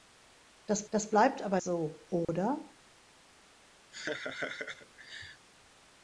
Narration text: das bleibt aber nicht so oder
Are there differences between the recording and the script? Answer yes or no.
yes